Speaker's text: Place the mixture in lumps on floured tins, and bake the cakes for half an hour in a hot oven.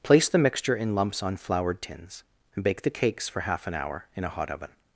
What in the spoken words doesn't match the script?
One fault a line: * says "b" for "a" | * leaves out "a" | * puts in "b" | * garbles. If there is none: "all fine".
all fine